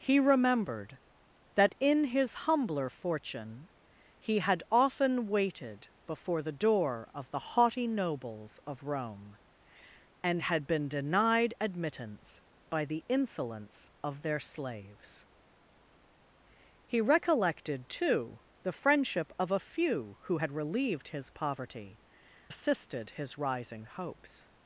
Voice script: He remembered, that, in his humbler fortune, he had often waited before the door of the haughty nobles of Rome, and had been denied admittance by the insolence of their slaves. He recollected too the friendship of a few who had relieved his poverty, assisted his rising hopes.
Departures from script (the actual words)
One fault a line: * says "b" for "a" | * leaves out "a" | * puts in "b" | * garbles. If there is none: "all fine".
all fine